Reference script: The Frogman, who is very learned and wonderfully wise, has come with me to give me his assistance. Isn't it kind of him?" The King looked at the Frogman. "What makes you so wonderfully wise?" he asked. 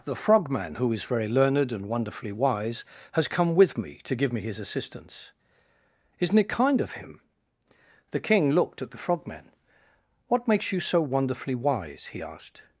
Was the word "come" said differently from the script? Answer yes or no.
no